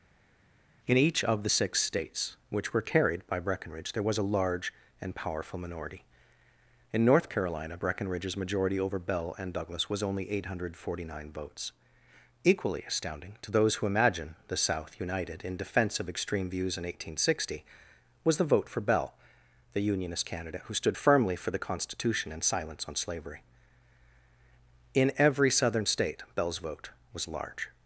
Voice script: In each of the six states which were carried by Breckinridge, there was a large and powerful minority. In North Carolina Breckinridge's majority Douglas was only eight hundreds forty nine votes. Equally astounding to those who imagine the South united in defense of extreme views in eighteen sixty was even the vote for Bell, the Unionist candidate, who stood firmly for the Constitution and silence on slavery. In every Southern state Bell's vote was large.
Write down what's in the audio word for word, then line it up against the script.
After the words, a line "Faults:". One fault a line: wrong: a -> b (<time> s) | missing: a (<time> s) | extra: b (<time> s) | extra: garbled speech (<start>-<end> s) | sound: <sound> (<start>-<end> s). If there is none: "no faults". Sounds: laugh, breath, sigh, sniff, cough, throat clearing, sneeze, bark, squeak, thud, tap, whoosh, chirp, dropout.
In each of the six states which were carried by Breckinridge, there was a large and powerful minority. In North Carolina Breckinridge's majority over Bell and Douglas was only eight hundred forty nine votes. Equally astounding to those who imagine the South united in defense of extreme views in eighteen sixty was the vote for Bell, the Unionist candidate, who stood firmly for the Constitution and silence on slavery. In every Southern state Bell's vote was large.
Faults:
extra: over Bell and (8.8 s)
wrong: hundreds -> hundred (10.4 s)
missing: even (18.4 s)